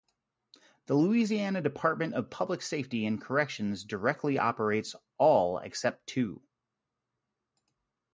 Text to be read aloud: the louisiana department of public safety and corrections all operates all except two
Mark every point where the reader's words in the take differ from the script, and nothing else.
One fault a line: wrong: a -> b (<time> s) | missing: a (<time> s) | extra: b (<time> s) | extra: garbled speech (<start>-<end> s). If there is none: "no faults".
wrong: all -> directly (3.8 s)